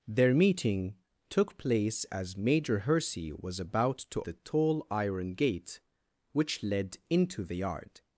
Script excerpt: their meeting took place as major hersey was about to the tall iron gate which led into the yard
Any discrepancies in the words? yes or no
no